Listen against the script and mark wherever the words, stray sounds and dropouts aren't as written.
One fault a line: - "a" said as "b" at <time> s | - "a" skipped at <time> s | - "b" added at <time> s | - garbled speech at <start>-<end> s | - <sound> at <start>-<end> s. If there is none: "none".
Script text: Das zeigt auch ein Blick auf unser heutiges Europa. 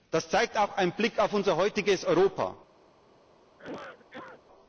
- cough at 3.5-4.4 s